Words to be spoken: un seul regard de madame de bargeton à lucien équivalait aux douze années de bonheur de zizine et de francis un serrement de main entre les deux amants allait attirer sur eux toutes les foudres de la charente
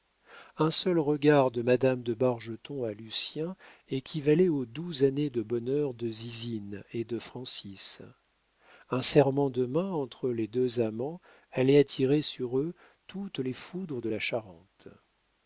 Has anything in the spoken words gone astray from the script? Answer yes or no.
no